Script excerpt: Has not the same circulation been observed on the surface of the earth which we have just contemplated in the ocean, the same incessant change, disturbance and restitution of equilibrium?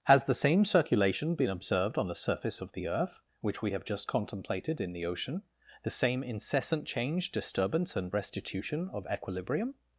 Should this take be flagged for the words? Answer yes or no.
yes